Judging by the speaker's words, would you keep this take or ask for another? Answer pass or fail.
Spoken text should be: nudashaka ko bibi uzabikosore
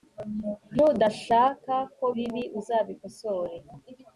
pass